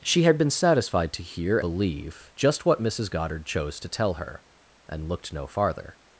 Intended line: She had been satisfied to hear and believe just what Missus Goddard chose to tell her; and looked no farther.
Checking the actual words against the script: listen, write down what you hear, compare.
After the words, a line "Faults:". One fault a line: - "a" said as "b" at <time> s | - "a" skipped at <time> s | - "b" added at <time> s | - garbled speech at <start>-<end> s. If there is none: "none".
She had been satisfied to hear believe just what Missus Goddard chose to tell her; and looked no farther.
Faults:
- "and" skipped at 1.6 s